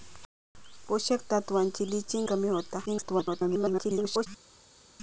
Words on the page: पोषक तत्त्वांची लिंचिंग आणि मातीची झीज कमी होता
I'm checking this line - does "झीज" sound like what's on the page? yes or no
no